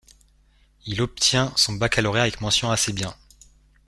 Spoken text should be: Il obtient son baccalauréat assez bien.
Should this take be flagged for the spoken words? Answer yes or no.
yes